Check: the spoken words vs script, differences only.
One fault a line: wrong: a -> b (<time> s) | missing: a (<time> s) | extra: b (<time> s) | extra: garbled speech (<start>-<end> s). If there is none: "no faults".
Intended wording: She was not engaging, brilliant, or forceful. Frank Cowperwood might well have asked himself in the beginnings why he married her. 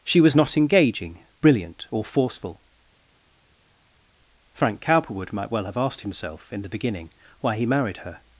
wrong: beginnings -> beginning (6.7 s)